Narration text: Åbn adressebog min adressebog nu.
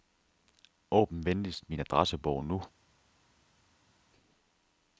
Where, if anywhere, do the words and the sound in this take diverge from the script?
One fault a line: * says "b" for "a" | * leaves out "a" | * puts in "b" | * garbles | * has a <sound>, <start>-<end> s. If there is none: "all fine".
* says "venligst" for "adressebog"